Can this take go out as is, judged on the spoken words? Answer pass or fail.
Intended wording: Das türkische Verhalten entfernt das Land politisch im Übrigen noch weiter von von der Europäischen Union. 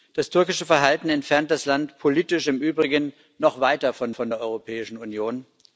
pass